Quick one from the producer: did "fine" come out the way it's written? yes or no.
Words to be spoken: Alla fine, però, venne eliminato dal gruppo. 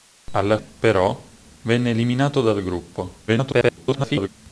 no